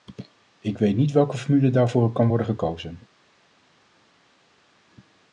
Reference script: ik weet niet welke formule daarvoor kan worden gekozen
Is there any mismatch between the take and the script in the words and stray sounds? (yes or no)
no